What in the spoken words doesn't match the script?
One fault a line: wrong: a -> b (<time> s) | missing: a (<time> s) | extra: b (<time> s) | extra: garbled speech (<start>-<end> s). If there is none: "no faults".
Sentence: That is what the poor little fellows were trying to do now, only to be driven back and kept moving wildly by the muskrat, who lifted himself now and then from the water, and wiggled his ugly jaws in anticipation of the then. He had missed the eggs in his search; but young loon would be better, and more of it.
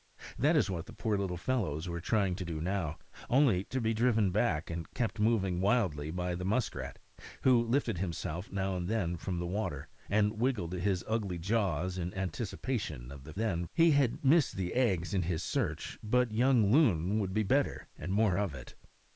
no faults